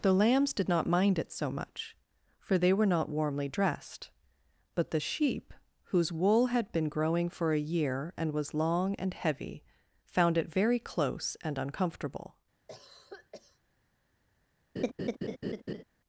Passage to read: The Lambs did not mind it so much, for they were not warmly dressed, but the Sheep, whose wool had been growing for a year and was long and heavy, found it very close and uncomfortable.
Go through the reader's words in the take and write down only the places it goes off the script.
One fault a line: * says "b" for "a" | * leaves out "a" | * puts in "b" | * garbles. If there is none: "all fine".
all fine